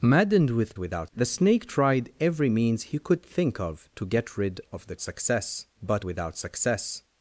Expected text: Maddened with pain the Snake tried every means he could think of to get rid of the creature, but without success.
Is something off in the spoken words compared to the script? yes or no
yes